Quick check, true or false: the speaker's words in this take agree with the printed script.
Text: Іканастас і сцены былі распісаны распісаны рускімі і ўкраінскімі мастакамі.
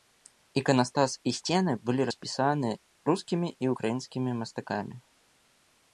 false